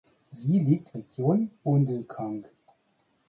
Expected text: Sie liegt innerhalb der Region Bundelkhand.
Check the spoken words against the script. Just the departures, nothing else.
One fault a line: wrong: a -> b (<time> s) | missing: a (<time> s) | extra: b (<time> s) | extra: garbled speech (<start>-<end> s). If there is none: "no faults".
missing: innerhalb der (1.0 s)